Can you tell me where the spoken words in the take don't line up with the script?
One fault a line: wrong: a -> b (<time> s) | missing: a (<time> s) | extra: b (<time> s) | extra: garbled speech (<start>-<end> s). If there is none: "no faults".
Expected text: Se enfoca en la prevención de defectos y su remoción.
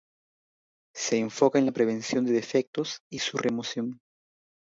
no faults